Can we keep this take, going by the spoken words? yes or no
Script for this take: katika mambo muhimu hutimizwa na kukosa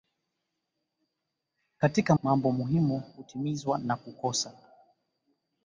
yes